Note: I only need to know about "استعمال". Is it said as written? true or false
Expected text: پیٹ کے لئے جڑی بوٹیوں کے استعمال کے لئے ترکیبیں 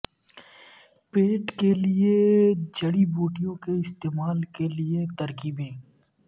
true